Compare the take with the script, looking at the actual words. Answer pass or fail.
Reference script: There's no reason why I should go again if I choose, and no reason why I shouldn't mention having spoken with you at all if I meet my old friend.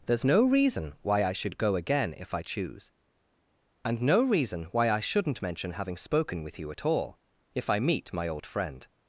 pass